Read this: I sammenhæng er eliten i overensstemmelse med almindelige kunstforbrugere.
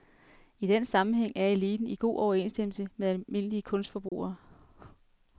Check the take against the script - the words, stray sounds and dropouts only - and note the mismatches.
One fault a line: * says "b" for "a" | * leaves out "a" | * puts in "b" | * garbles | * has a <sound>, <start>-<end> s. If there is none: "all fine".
* puts in "den"
* puts in "god"
* has a dropout, 4.1-4.1 s